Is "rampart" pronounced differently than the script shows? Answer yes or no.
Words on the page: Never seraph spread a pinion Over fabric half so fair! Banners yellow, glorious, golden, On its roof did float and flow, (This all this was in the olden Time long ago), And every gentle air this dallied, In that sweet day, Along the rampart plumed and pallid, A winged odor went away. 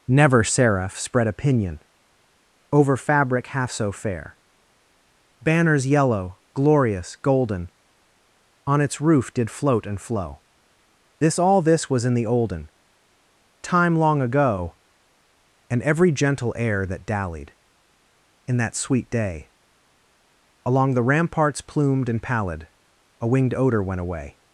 yes